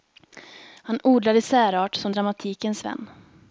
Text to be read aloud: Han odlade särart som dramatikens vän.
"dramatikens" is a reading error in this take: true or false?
false